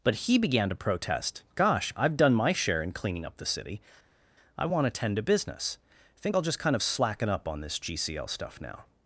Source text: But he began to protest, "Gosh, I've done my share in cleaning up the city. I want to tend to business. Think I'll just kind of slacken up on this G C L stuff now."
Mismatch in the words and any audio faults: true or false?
false